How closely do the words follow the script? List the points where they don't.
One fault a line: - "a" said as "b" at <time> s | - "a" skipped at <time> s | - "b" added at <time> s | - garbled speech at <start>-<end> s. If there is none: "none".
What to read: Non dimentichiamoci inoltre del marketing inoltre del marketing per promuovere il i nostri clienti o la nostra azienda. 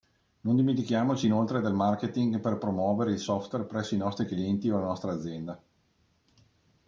- "inoltre del marketing" skipped at 2.4 s
- "software presso" added at 3.2 s